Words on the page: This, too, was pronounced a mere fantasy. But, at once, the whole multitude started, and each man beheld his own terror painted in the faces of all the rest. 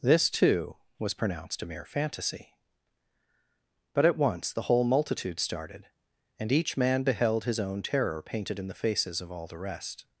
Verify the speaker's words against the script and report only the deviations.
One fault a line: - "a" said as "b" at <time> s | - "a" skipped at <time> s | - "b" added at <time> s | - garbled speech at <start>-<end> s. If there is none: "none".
none